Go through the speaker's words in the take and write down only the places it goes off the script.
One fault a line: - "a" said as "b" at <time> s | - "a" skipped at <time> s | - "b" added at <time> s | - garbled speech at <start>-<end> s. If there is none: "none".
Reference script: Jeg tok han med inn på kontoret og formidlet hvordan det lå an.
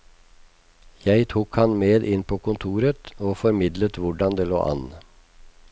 none